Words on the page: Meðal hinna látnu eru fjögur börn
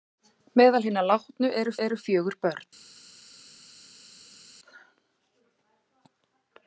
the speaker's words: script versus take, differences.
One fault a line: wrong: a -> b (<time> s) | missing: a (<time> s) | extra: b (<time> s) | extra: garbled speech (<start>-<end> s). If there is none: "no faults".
extra: eru (1.8 s)